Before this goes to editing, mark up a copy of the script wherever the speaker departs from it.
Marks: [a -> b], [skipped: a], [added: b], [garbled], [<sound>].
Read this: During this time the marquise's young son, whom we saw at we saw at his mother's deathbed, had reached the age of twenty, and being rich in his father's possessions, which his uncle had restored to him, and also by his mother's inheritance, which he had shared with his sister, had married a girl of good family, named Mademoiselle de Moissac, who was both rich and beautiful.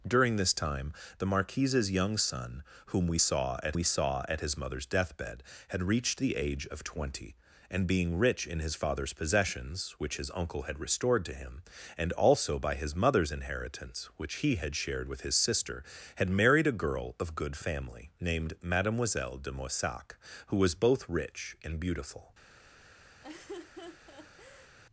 During this time the marquise's young son, whom we saw at we saw at his mother's deathbed, had reached the age of twenty, and being rich in his father's possessions, which his uncle had restored to him, and also by his mother's inheritance, which he had shared with his sister, had married a girl of good family, named Mademoiselle de Moissac, who was both rich and beautiful. [laugh]